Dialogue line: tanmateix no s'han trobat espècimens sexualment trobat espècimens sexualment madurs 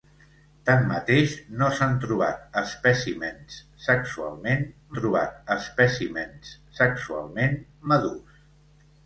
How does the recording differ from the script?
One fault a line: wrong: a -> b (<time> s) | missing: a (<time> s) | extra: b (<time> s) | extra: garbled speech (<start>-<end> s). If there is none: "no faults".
no faults